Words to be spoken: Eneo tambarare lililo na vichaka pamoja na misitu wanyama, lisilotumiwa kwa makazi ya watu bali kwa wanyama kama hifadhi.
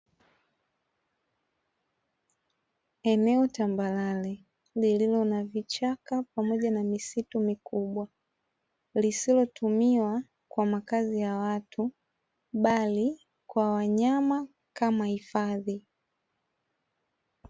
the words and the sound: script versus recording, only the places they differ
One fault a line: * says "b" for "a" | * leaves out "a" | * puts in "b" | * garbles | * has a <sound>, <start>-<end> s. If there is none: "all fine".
* says "mikubwa" for "wanyama"